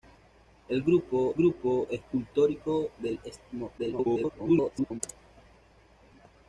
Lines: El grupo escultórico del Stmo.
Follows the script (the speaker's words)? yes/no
no